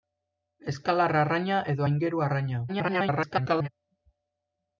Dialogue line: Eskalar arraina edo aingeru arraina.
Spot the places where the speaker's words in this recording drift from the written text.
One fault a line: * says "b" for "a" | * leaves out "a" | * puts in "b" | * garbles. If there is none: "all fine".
* garbles